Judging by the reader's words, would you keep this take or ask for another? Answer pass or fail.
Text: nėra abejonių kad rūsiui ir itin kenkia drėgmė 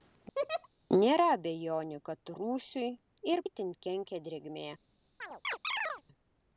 pass